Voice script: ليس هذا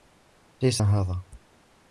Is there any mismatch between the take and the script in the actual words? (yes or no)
no